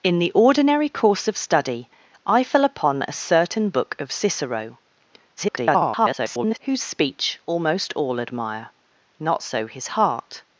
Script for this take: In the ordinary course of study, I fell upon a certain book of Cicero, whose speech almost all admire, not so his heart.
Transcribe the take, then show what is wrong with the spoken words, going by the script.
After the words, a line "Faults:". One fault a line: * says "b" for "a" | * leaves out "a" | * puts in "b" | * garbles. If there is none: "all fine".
In the ordinary course of study, I fell upon a certain book of Cicero, [garbled] whose speech almost all admire, not so his heart.
Faults:
* garbles